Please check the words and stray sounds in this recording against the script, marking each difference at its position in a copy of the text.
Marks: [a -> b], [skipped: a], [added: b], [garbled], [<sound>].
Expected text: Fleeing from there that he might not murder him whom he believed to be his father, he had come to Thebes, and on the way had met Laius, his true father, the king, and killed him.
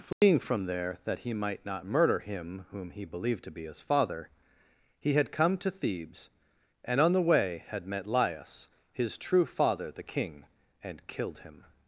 Fleeing [dropout] from there that he might not murder him whom he believed to be his father, he had come to Thebes, and on the way had met Laius, his true father, the king, and killed him.